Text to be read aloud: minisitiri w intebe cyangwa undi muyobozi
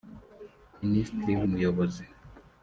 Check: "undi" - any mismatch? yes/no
yes